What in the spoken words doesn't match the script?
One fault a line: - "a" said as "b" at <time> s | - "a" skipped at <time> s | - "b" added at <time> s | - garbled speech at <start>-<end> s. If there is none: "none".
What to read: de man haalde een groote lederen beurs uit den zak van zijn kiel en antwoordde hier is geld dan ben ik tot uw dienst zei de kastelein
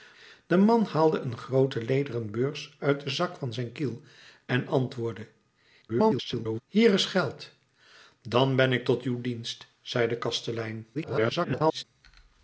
- garbled speech at 5.9-6.6 s
- garbled speech at 10.9-11.8 s